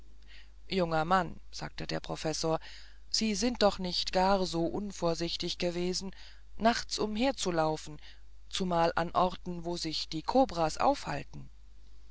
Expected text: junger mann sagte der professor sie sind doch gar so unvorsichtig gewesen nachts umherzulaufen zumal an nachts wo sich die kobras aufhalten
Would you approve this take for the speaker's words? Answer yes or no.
no